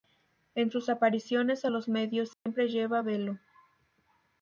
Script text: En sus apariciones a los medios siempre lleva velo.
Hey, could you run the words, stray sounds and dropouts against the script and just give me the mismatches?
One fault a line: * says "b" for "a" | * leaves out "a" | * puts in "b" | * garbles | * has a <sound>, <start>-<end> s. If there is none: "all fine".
* has a dropout, 2.3-2.5 s